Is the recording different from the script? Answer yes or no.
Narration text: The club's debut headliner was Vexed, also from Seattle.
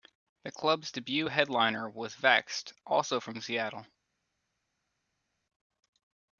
no